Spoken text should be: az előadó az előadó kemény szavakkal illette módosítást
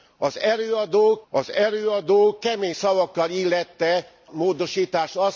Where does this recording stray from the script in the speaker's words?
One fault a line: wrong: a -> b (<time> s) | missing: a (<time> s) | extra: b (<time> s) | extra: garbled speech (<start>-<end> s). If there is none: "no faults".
no faults